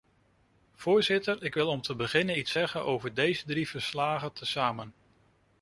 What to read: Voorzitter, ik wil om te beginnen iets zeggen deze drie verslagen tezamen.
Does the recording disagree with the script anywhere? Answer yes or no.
yes